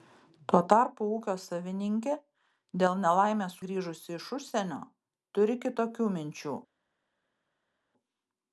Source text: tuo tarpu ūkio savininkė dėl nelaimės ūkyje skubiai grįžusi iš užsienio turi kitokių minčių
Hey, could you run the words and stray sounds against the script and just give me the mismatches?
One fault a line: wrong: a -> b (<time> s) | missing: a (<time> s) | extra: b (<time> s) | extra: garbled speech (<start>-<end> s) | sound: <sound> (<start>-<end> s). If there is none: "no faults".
missing: ūkyje skubiai (3.6 s)